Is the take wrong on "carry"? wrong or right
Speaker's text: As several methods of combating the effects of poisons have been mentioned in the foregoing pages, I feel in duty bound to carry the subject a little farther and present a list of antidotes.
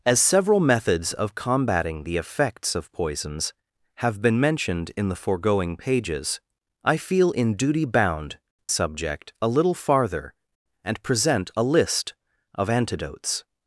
wrong